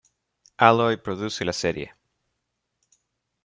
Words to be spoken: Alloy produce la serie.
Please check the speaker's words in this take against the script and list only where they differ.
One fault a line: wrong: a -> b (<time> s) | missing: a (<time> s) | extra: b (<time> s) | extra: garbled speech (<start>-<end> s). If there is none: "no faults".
no faults